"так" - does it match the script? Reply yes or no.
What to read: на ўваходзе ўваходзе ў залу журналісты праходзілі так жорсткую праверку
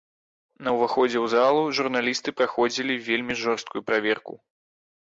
no